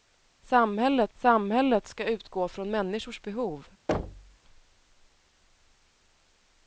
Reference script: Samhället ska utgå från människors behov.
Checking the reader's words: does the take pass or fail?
fail